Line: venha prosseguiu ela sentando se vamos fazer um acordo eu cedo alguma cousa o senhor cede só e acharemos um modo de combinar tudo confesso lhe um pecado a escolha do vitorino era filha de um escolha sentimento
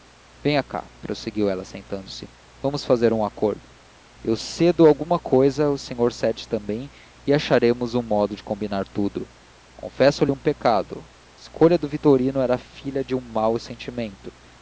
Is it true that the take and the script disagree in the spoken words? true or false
true